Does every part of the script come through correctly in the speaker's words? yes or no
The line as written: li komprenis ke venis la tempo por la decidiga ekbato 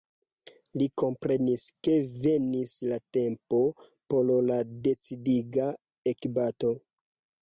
yes